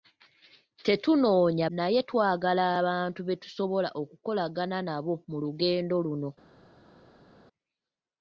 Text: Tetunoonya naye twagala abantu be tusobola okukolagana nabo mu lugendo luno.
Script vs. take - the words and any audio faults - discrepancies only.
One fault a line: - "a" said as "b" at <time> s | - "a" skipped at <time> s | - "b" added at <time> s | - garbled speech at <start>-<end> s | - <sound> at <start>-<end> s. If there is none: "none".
none